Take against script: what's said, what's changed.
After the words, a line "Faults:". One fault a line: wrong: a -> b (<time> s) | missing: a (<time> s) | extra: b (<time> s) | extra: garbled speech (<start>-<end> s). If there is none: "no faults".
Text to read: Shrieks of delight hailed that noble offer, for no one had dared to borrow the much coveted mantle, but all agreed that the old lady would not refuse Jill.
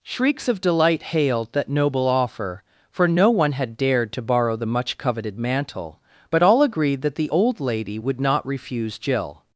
Shrieks of delight hailed that noble offer, for no one had dared to borrow the much coveted mantle, but all agreed that the old lady would not refuse Jill.
Faults:
no faults